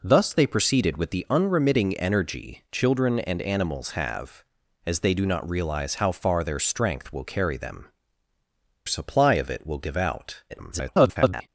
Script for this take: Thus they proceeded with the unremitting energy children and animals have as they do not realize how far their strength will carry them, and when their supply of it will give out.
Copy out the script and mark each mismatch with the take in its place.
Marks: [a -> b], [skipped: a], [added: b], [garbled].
Thus they proceeded with the unremitting energy children and animals have as they do not realize how far their strength will carry them, [skipped: and when their] supply of it will give out. [garbled]